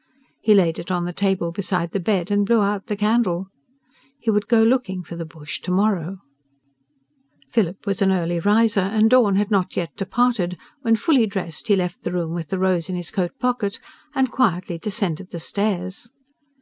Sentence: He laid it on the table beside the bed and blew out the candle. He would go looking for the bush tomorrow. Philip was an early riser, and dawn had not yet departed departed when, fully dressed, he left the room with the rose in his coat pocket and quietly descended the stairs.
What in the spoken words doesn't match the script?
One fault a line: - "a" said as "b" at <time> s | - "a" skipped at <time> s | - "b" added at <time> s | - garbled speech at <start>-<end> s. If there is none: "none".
- "departed" skipped at 10.6 s